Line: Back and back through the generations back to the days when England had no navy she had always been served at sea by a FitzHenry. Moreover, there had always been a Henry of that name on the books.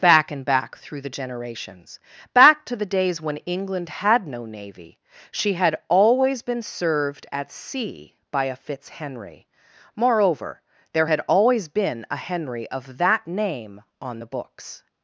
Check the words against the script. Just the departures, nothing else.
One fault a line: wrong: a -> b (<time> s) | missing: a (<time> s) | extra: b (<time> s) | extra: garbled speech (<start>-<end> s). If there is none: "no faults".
no faults